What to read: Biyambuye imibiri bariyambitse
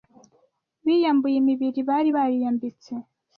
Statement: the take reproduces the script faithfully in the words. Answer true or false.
false